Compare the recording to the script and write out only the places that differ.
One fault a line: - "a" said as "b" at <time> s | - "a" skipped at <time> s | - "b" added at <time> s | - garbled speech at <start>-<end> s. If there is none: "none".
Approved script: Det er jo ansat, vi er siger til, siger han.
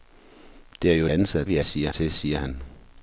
none